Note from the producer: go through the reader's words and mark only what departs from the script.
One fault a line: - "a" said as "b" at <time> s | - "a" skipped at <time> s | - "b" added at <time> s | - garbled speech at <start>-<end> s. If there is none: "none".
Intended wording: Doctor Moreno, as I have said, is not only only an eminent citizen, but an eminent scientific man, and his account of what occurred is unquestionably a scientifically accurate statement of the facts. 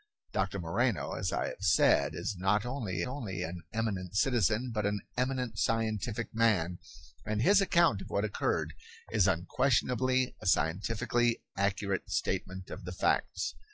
none